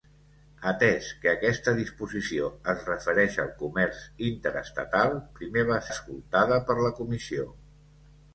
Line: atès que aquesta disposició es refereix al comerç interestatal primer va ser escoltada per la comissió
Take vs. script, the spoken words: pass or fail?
fail